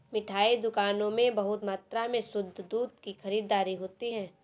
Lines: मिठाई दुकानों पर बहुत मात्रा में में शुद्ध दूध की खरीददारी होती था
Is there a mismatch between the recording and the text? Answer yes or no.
yes